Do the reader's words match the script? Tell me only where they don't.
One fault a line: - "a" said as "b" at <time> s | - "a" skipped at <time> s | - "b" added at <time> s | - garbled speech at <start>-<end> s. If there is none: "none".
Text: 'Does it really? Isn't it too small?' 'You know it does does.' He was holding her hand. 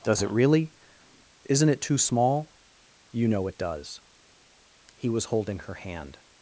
- "does" skipped at 4.0 s